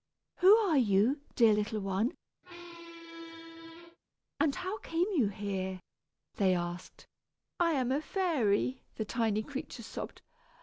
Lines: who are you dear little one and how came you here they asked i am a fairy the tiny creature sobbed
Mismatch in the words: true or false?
false